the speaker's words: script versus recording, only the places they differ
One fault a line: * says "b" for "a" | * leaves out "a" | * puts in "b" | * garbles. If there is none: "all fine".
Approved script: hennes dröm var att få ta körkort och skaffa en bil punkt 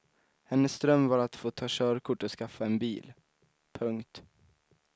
all fine